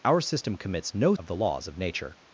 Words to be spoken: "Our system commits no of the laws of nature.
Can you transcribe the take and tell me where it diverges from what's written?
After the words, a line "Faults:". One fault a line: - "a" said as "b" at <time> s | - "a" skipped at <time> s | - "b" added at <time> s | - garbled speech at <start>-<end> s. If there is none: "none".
"Our system commits no of the laws of nature.
Faults:
none